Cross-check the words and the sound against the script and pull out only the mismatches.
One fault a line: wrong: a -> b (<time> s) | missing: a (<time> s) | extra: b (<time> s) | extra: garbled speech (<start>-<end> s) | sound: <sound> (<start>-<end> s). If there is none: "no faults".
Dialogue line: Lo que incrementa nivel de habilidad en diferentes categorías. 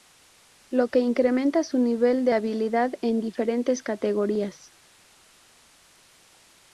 extra: su (1.6 s)